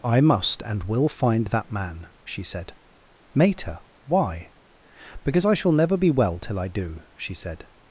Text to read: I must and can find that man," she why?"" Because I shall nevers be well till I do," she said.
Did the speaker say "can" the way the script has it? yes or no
no